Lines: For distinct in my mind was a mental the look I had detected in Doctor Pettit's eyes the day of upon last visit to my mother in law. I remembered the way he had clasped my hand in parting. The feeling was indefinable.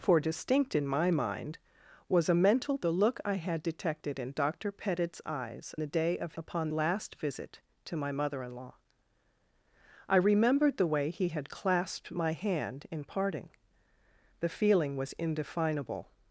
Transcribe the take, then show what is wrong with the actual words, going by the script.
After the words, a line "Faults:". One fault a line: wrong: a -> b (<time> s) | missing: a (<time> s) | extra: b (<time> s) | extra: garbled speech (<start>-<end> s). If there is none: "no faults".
For distinct in my mind was a mental the look I had detected in Doctor Pettit's eyes the day of upon last visit to my mother in law. I remembered the way he had clasped my hand in parting. The feeling was indefinable.
Faults:
no faults